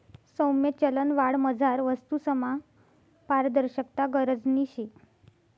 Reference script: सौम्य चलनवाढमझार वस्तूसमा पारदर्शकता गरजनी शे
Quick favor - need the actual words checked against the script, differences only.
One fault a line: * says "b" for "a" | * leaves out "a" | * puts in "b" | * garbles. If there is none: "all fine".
all fine